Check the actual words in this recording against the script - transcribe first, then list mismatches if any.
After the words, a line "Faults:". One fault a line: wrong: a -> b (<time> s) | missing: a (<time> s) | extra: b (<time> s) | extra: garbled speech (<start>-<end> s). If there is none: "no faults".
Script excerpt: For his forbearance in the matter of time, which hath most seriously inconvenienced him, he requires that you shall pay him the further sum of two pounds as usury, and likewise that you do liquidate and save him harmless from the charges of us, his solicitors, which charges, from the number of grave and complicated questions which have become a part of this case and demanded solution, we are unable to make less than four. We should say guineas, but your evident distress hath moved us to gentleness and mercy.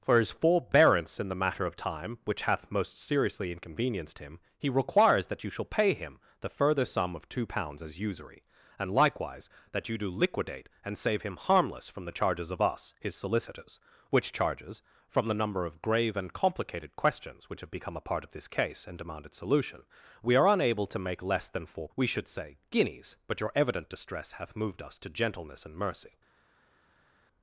For his forbearance in the matter of time, which hath most seriously inconvenienced him, he requires that you shall pay him the further sum of two pounds as usury, and likewise that you do liquidate and save him harmless from the charges of us, his solicitors, which charges, from the number of grave and complicated questions which have become a part of this case and demanded solution, we are unable to make less than four. We should say guineas, but your evident distress hath moved us to gentleness and mercy.
Faults:
no faults